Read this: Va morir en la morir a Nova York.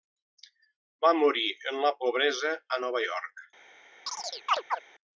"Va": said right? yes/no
yes